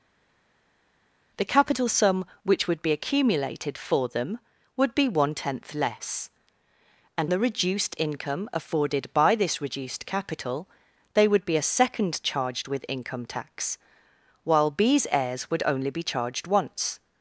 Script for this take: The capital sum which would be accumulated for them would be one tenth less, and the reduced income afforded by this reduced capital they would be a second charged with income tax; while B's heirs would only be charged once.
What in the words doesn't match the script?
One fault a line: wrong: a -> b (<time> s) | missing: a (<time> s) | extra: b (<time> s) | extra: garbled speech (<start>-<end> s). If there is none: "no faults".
no faults